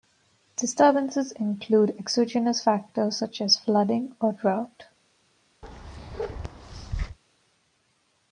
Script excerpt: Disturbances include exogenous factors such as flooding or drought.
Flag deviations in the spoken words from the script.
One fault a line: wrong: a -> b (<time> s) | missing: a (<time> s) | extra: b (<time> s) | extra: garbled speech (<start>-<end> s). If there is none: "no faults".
no faults